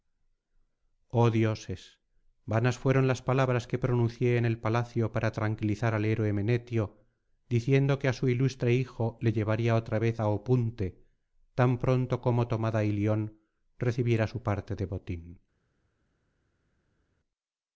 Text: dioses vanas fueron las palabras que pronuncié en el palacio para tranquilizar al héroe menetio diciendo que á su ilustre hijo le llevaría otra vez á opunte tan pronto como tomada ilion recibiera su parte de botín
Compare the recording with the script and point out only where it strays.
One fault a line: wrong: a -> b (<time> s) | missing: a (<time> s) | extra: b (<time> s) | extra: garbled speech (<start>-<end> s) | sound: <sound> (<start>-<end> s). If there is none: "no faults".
no faults